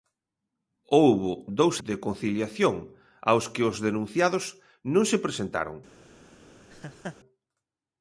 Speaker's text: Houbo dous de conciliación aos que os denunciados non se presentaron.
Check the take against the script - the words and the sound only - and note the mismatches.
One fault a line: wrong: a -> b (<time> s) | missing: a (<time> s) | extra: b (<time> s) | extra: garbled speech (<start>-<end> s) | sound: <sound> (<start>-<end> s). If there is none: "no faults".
sound: laugh (6.7-7.2 s)